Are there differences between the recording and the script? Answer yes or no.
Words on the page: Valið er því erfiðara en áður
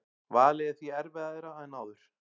no